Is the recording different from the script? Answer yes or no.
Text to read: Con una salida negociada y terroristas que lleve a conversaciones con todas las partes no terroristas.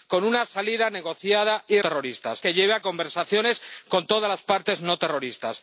no